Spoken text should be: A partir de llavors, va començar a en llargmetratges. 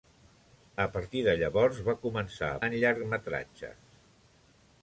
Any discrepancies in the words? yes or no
no